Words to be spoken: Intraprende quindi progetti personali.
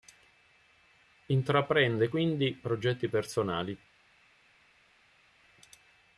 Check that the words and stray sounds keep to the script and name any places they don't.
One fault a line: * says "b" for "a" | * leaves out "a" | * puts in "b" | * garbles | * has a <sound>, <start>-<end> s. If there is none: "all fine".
all fine